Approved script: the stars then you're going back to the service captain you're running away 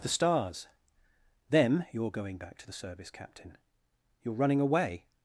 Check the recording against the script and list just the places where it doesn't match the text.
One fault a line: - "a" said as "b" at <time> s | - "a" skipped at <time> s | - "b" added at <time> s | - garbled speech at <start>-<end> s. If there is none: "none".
- "then" said as "them" at 1.5 s